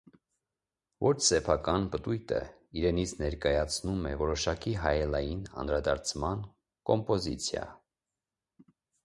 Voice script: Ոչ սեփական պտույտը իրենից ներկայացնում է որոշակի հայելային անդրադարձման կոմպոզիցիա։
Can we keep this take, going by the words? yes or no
yes